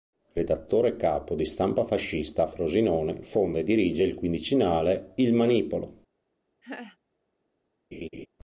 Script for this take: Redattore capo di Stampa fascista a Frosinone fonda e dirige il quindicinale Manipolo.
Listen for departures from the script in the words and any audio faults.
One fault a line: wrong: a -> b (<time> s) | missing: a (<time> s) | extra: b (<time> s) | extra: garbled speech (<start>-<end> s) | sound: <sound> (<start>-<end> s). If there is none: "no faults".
extra: Il (5.1 s)
sound: laugh (6.6-7.0 s)
sound: laugh (7.9-8.3 s)